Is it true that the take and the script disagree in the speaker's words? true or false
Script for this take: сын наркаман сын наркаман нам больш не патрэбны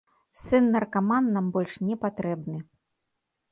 true